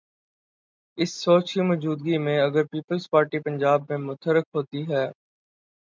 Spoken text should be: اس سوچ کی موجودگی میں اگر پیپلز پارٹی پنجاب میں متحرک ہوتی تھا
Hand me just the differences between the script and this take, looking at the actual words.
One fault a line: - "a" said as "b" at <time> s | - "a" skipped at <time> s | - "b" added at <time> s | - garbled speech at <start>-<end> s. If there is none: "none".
- "تھا" said as "ہے" at 4.9 s